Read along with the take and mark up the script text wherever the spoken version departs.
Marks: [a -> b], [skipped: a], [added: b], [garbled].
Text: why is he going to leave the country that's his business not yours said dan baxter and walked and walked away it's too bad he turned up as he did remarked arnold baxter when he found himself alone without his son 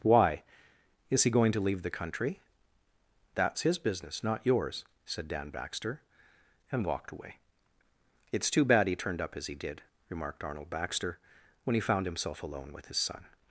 why is he going to leave the country that's his business not yours said dan baxter and walked [skipped: and walked] away it's too bad he turned up as he did remarked arnold baxter when he found himself alone [without -> with] his son